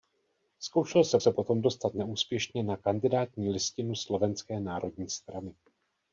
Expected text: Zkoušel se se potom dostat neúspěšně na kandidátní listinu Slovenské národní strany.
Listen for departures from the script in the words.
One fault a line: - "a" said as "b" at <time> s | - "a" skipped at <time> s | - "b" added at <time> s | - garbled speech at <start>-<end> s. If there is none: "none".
none